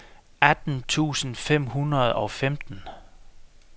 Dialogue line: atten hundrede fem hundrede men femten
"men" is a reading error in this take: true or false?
true